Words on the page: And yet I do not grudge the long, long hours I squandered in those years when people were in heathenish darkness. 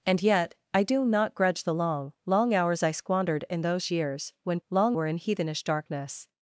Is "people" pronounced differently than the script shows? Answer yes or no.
yes